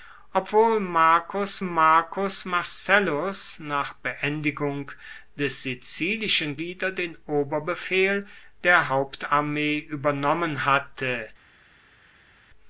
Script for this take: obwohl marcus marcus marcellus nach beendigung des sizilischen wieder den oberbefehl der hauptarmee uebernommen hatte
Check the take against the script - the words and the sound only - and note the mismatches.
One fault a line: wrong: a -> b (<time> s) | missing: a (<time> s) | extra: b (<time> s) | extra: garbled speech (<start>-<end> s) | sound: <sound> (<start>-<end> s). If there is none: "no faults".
no faults